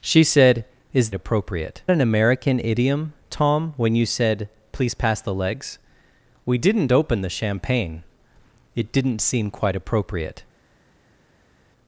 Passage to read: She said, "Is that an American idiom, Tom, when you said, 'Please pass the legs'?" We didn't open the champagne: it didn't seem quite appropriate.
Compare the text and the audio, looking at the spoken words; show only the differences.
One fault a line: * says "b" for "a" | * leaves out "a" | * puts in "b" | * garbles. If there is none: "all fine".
* says "appropriate" for "that"